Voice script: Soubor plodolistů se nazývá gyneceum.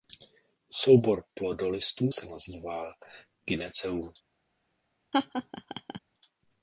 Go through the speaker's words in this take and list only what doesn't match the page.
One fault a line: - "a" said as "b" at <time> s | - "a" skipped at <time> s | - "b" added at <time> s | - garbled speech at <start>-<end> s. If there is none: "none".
none